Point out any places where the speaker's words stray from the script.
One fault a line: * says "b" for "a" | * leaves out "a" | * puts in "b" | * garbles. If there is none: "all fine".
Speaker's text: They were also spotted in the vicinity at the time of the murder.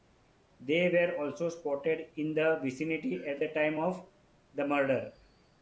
all fine